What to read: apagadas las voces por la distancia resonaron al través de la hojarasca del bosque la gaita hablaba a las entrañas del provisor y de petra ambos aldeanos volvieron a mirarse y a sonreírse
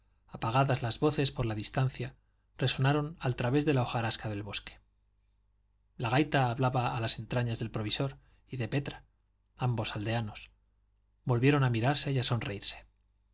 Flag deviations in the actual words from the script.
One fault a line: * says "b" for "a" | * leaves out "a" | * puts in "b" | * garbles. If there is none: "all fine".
all fine